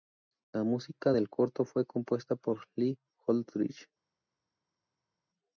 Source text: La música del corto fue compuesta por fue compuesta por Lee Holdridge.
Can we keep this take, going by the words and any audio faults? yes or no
no